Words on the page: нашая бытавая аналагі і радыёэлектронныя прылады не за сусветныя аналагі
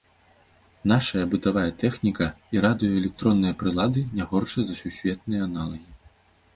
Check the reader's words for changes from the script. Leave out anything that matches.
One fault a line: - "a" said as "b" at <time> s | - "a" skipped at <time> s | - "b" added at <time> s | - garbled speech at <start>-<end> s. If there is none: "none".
- "аналагі" said as "тэхніка" at 1.8 s
- "горшыя" added at 4.3 s